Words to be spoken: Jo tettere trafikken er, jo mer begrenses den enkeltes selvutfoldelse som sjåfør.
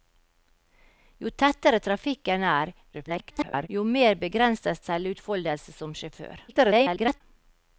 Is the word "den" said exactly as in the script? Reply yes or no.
no